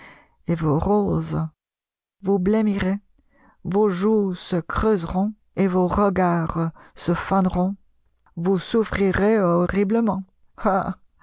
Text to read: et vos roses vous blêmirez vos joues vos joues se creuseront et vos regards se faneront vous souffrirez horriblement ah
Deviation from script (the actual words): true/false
true